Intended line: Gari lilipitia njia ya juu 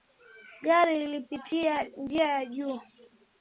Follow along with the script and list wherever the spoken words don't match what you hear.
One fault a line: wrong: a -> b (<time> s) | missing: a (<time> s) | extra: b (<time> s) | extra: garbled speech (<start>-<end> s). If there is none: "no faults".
no faults